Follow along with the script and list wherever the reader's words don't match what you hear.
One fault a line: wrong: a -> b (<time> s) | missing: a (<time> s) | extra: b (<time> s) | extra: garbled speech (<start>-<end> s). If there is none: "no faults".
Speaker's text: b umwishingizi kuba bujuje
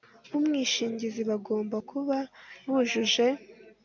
extra: bagomba (1.3 s)